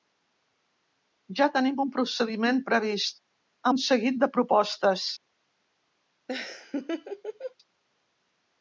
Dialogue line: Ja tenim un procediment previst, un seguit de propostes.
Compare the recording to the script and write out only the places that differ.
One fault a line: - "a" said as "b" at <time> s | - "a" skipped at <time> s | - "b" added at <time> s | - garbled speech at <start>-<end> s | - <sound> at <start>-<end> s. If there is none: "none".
- laugh at 6.3-7.5 s